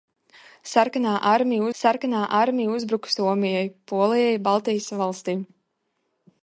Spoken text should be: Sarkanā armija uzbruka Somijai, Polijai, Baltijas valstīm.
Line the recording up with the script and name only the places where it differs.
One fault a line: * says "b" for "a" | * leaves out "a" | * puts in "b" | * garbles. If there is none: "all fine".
* puts in "sarkanā armija"